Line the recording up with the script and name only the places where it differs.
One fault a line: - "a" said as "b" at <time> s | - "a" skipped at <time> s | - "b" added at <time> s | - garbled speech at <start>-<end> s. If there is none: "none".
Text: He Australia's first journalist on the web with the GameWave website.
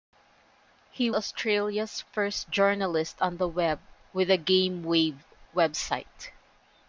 none